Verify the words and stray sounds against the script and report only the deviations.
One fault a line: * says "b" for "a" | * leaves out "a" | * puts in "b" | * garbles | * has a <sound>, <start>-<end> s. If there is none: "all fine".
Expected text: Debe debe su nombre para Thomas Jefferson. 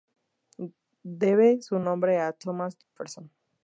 * leaves out "debe"
* says "a" for "para"
* has a dropout, 2.8-3.0 s